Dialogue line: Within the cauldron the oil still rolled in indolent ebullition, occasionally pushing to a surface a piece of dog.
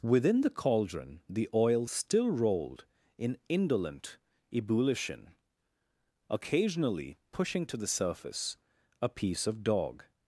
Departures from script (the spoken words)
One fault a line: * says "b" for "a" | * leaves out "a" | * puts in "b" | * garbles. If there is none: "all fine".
* says "the" for "a"